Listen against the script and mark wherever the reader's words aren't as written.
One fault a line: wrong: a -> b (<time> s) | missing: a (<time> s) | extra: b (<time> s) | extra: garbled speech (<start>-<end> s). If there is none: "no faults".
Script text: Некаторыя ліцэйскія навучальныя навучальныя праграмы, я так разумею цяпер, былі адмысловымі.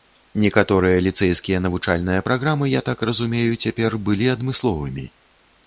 missing: навучальныя (2.2 s)